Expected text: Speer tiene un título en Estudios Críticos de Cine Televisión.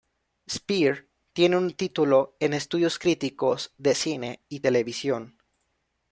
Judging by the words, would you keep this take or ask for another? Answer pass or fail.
fail